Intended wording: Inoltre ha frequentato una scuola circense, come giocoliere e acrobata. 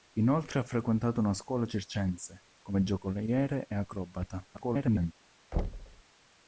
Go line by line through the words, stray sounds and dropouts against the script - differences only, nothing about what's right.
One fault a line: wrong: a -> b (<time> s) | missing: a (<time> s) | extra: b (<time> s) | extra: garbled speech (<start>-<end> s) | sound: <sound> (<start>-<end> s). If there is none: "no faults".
extra: garbled speech (4.5-5.1 s)
sound: thud (5.5-6.0 s)